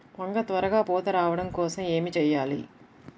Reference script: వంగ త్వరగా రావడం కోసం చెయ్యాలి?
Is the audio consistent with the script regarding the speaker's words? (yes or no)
no